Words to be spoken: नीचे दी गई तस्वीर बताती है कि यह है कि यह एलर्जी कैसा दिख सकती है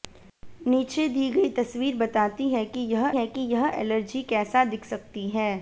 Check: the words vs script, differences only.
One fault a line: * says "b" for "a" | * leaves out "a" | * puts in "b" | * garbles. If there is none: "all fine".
all fine